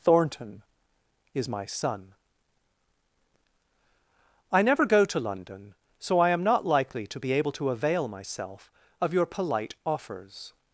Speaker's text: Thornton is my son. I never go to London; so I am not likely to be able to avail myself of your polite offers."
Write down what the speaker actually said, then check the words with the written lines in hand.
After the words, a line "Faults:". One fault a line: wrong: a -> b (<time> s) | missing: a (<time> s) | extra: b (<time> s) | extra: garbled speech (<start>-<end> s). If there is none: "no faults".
Thornton is my son. I never go to London; so I am not likely to be able to avail myself of your polite offers."
Faults:
no faults